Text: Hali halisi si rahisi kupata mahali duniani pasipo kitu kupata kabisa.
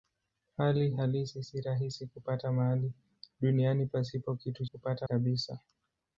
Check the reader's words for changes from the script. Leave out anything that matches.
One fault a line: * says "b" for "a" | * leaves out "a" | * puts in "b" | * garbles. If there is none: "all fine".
all fine